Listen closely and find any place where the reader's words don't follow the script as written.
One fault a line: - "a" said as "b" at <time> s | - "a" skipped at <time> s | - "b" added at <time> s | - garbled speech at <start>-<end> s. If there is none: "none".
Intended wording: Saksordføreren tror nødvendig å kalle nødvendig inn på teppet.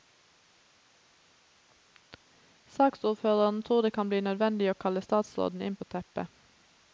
- "det kan bli" added at 3.8 s
- "nødvendig" said as "statsråden" at 5.0 s